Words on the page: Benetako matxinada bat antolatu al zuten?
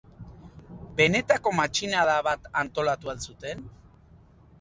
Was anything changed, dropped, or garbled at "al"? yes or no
no